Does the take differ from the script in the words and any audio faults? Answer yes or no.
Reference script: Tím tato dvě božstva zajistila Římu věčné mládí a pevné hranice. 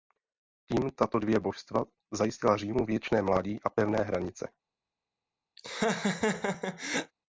yes